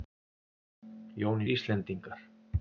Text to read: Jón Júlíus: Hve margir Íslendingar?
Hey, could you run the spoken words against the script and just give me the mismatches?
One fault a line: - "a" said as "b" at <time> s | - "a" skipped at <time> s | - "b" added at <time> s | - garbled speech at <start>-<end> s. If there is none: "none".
- "Júlíus Hve margir" skipped at 1.4 s